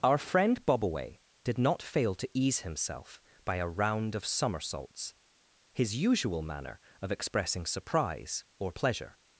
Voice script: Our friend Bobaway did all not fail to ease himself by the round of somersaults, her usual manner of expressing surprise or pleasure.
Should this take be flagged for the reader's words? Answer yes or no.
yes